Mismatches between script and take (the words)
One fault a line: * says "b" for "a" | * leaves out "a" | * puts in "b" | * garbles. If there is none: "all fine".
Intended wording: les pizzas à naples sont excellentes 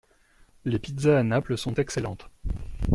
all fine